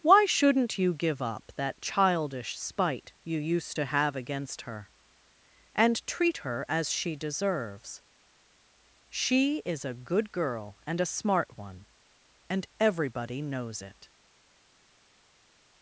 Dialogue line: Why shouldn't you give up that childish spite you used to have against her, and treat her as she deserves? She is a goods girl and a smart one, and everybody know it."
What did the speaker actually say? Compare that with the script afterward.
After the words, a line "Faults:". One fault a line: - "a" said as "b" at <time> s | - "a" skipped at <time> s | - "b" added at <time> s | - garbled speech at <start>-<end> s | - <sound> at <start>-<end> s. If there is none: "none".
Why shouldn't you give up that childish spite you used to have against her, and treat her as she deserves? She is a good girl and a smart one, and everybody knows it."
Faults:
- "goods" said as "good" at 9.9 s
- "know" said as "knows" at 13.4 s